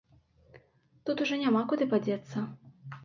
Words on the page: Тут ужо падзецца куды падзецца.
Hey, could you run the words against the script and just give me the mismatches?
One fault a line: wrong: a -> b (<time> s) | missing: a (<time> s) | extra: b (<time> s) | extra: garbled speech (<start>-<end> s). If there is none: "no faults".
wrong: падзецца -> няма (1.4 s)